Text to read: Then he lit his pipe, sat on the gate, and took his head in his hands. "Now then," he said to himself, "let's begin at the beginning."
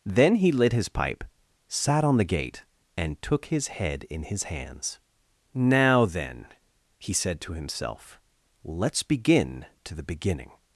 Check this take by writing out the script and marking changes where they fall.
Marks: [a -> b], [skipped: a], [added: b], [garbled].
Then he lit his pipe, sat on the gate, and took his head in his hands. "Now then," he said to himself, "let's begin [at -> to] the beginning."